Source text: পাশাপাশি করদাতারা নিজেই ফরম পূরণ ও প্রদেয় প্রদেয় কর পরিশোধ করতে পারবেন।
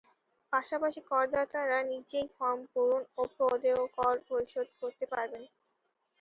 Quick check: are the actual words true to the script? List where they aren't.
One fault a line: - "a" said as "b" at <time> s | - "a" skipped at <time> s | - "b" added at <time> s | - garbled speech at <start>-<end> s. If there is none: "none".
- "প্রদেয়" skipped at 3.8 s